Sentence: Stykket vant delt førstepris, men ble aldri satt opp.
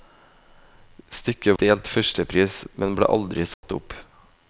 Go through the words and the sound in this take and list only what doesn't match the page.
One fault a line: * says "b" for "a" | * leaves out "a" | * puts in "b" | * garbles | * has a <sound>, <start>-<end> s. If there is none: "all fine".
* leaves out "vant"
* has a dropout, 3.5-3.6 s